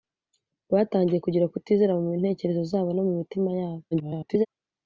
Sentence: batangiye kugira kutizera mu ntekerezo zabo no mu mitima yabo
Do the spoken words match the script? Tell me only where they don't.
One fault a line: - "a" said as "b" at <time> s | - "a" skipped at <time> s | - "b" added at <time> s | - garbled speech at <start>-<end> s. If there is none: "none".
- garbled speech at 3.9-4.5 s